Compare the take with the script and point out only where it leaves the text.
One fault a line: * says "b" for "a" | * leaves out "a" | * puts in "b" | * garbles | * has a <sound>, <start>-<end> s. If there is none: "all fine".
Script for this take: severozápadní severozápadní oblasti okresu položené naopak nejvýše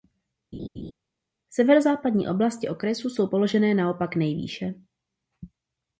* has a laugh, 0.5-0.9 s
* leaves out "severozápadní"
* puts in "jsou"